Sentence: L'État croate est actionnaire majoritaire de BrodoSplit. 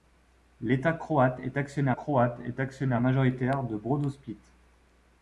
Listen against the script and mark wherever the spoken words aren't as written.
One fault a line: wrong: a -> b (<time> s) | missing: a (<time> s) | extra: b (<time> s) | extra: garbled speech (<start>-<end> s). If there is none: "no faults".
extra: croate est actionnaire (1.9 s)